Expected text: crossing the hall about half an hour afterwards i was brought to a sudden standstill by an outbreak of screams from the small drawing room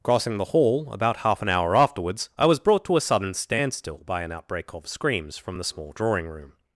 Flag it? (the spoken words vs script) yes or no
no